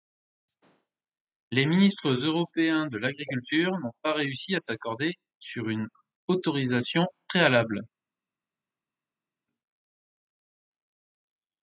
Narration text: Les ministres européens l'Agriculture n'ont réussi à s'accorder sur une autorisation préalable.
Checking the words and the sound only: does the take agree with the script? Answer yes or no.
no